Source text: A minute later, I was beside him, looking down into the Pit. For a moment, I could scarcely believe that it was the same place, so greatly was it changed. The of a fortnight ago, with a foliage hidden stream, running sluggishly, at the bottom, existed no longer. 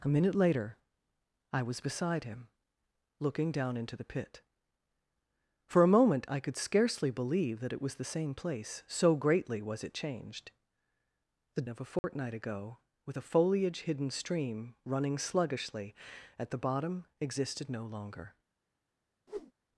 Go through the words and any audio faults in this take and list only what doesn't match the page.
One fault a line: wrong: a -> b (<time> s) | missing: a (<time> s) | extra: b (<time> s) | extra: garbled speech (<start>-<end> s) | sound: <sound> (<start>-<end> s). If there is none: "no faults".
sound: dropout (12.0-12.0 s)
sound: whoosh (19.3-19.5 s)